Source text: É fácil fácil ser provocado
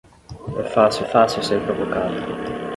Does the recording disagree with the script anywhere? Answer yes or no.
no